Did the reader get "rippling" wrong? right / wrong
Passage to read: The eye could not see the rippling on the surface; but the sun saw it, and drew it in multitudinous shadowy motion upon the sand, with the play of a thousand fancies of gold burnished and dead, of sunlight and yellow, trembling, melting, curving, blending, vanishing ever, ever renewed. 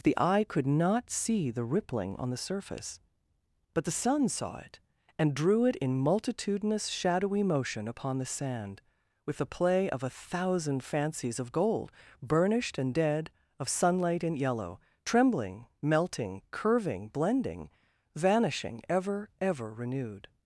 right